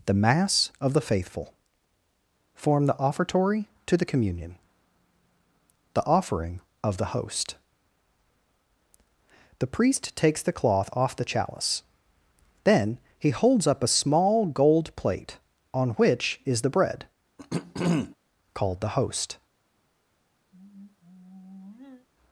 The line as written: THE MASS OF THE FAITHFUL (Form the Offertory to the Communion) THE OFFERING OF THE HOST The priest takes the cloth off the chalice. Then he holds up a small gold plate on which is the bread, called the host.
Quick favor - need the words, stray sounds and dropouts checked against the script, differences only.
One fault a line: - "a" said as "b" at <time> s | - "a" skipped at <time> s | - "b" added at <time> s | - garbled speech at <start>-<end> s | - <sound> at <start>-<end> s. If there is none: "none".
- throat clearing at 17.4-18.2 s
- sigh at 20.5-22.1 s